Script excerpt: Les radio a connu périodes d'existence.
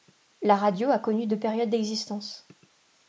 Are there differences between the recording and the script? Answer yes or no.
yes